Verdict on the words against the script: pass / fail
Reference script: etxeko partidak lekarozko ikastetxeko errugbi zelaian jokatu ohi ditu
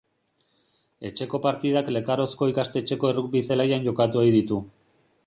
pass